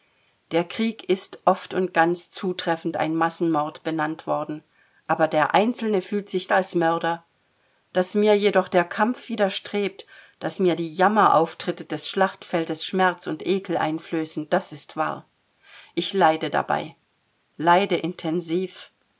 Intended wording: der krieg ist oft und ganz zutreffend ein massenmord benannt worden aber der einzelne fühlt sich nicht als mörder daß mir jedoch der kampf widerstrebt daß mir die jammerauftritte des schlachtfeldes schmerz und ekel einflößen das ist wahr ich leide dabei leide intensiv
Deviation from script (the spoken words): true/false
true